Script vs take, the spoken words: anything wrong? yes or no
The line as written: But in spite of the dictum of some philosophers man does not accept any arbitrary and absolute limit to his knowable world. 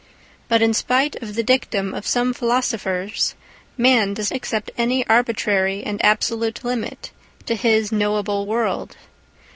yes